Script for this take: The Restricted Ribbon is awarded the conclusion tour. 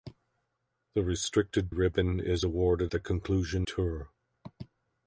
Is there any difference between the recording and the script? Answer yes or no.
no